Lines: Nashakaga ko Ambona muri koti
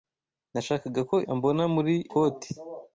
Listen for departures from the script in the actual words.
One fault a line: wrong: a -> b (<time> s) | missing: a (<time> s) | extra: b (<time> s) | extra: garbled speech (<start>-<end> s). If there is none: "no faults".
no faults